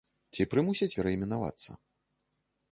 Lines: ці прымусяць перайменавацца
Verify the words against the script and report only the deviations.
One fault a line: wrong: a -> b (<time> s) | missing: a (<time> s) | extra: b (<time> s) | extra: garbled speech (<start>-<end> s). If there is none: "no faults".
no faults